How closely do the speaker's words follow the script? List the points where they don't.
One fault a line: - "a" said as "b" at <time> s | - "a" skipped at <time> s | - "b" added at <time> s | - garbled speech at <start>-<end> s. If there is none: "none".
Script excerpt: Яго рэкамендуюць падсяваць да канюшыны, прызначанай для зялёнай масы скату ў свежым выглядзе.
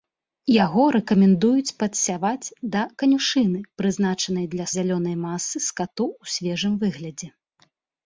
none